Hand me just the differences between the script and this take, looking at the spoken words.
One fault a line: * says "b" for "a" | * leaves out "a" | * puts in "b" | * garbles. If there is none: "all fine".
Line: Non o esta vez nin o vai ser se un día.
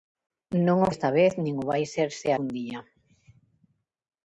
all fine